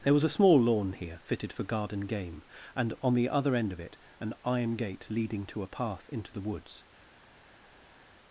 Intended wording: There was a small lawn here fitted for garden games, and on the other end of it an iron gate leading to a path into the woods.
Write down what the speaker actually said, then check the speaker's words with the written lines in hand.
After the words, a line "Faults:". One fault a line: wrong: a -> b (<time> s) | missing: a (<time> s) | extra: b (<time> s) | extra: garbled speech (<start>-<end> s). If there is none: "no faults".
There was a small lawn here fitted for garden game, and on the other end of it an iron gate leading to a path into the woods.
Faults:
wrong: games -> game (2.0 s)